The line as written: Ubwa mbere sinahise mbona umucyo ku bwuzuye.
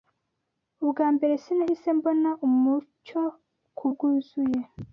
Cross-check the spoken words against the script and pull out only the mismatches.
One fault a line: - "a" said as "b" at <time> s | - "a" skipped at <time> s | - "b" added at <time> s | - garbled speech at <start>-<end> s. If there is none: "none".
none